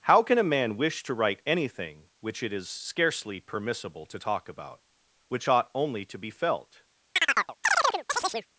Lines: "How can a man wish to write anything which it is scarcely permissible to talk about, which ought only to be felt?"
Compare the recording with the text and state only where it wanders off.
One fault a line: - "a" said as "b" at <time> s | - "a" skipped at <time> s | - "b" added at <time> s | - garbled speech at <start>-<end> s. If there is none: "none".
none